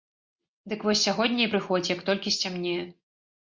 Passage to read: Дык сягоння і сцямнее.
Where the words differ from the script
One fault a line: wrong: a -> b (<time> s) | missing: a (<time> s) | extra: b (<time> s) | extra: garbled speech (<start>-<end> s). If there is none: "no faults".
extra: вось (0.9 s)
extra: прыходзь як толькі (1.5 s)